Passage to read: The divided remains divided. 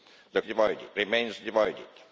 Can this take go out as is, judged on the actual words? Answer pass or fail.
pass